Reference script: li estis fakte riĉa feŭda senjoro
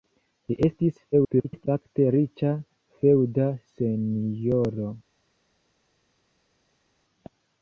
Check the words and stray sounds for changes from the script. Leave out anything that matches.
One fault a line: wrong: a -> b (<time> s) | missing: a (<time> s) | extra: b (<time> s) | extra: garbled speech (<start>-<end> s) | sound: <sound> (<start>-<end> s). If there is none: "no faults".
extra: garbled speech (1.1-1.7 s)